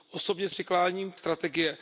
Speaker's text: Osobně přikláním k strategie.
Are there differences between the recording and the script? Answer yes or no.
no